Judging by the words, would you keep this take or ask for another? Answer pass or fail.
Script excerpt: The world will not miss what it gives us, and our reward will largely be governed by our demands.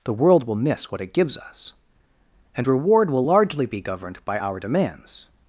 fail